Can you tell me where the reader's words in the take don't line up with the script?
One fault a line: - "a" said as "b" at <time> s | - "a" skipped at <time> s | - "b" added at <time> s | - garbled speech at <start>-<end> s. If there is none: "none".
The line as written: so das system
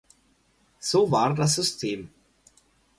- "war" added at 1.1 s